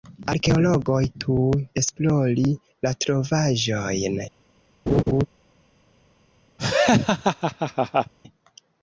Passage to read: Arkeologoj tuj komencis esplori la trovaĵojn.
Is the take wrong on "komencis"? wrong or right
wrong